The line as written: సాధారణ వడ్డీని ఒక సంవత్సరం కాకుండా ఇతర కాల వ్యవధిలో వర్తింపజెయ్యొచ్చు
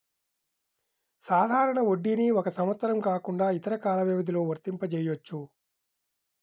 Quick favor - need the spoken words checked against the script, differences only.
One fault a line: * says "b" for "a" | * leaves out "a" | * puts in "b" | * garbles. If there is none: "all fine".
all fine